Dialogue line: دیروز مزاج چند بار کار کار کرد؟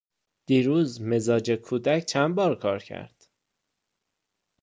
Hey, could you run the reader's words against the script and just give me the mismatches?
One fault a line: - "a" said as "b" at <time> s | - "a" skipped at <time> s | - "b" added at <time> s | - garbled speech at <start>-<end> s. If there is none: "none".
- "کودک" added at 1.5 s
- "کار" skipped at 2.8 s